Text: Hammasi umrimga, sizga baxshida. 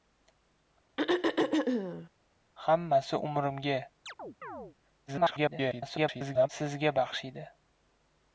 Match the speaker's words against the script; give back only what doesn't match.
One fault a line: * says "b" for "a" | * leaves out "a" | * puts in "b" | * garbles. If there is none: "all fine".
* garbles